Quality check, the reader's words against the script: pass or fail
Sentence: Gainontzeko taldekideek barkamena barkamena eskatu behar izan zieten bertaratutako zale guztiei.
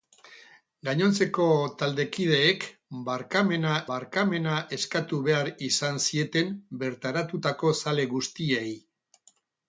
pass